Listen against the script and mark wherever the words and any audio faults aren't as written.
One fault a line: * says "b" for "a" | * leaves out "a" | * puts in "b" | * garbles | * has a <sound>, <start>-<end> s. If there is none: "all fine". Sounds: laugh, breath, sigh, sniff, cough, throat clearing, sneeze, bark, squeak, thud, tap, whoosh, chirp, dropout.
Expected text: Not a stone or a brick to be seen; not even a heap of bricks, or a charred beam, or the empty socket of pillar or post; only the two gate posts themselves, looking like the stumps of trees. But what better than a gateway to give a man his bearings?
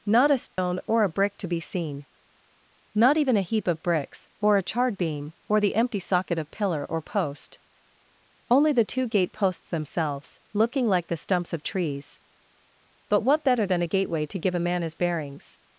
* has a dropout, 0.5-0.6 s